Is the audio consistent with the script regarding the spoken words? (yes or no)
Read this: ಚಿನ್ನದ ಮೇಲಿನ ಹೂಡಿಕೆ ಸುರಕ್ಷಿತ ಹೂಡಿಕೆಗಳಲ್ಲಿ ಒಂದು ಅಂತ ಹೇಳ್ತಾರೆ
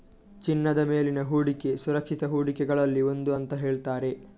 yes